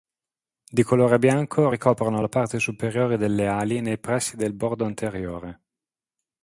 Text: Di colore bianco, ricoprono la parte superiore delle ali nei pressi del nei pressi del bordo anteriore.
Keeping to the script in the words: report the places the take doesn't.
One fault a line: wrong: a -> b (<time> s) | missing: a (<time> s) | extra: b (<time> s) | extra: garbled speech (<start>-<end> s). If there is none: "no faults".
missing: nei pressi del (4.5 s)